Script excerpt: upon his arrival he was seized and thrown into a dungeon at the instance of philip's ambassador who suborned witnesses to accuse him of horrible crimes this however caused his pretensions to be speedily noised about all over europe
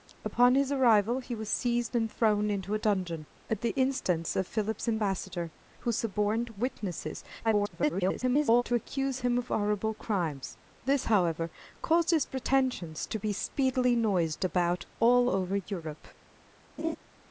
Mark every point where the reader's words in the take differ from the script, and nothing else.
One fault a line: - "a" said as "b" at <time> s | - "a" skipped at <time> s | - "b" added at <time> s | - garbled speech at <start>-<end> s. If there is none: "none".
- garbled speech at 7.4-8.6 s